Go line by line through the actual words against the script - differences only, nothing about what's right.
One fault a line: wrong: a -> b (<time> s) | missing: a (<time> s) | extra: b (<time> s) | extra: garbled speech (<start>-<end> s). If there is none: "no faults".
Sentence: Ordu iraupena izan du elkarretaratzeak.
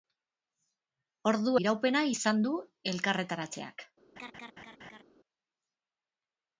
no faults